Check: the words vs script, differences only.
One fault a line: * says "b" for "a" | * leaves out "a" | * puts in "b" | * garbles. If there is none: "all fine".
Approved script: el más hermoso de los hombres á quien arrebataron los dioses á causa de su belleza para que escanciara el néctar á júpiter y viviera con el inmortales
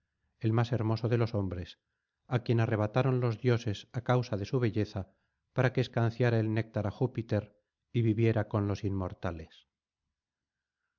* says "los" for "el"